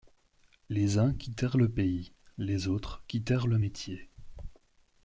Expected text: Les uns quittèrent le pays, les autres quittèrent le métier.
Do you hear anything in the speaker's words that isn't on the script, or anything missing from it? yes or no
no